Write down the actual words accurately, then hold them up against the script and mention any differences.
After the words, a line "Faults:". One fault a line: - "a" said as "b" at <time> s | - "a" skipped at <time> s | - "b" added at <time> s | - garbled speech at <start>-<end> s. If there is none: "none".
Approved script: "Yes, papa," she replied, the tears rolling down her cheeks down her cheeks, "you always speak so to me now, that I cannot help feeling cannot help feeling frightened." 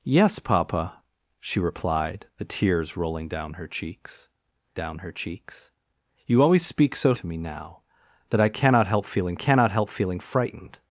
"Yes, papa," she replied, the tears rolling down her cheeks down her cheeks, "you always speak so to me now, that I cannot help feeling cannot help feeling frightened."
Faults:
none